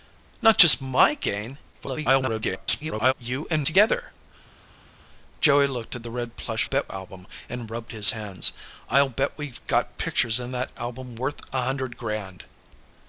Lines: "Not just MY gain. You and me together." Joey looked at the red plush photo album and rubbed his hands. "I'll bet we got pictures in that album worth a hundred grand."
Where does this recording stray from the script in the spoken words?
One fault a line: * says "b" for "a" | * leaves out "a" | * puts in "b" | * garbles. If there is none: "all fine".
* garbles
* leaves out "me"
* says "bet" for "photo"